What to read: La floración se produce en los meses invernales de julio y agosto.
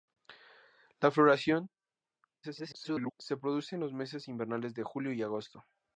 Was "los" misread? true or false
false